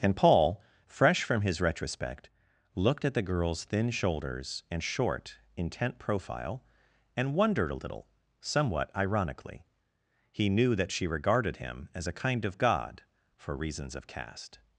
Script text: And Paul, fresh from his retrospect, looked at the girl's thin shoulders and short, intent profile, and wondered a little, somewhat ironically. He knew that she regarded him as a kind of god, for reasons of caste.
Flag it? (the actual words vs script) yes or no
no